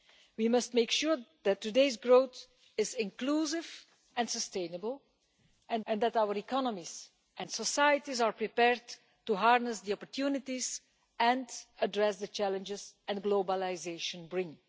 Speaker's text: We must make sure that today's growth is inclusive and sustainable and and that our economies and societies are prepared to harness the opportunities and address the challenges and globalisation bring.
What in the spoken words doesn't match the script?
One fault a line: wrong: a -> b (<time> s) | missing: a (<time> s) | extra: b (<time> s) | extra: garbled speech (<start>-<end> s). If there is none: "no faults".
no faults